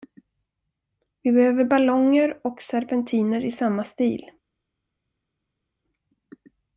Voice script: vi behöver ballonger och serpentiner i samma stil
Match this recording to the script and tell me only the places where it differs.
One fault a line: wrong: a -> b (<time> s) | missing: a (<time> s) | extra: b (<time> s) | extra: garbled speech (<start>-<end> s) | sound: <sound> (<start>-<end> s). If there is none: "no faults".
no faults